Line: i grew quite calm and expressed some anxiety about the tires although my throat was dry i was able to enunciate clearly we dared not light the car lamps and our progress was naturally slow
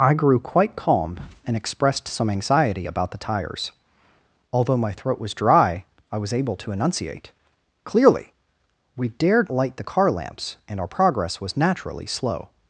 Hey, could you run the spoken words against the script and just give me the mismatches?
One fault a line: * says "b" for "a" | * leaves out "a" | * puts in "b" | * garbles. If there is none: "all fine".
* leaves out "not"